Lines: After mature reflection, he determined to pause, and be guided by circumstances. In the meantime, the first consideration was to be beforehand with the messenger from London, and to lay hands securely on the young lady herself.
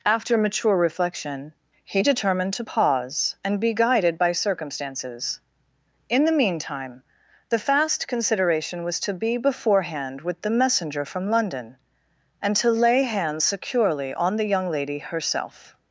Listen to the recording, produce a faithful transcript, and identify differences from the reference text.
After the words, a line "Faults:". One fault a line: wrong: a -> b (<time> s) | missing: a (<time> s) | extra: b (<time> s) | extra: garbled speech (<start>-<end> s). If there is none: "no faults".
After mature reflection, he determined to pause, and be guided by circumstances. In the meantime, the fast consideration was to be beforehand with the messenger from London, and to lay hands securely on the young lady herself.
Faults:
wrong: first -> fast (7.6 s)